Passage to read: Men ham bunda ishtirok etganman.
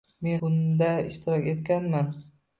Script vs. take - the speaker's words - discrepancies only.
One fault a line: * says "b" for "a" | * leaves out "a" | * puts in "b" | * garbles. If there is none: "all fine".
* leaves out "ham"